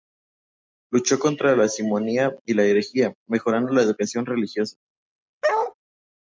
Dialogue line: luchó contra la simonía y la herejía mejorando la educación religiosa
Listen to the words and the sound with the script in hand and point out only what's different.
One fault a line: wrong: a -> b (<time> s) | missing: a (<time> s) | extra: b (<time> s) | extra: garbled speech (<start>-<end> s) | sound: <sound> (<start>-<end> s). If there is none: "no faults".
sound: bark (5.4-5.7 s)